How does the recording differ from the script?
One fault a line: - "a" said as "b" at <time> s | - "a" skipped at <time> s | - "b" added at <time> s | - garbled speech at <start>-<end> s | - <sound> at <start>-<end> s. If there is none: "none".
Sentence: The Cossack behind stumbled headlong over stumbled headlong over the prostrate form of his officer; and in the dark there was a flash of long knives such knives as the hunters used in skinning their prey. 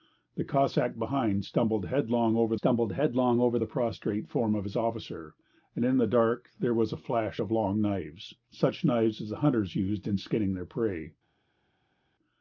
none